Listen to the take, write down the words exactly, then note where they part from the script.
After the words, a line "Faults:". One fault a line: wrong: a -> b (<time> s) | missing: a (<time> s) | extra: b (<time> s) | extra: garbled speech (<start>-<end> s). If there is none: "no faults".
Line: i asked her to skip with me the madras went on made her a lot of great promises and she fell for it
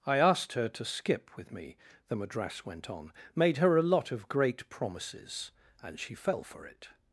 i asked her to skip with me the madras went on made her a lot of great promises and she fell for it
Faults:
no faults